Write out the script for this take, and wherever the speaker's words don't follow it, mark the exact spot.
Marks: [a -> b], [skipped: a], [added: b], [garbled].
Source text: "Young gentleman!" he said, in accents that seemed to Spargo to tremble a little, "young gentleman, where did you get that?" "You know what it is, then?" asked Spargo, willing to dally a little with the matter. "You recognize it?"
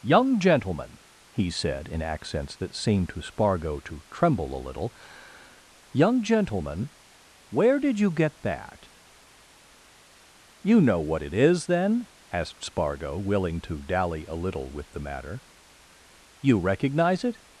"Young gentleman!" he said, in accents that seemed to Spargo to tremble a little, "young gentleman, where did you get that?" "You know what it is, then?" asked Spargo, willing to dally a little with the matter. "You recognize it?"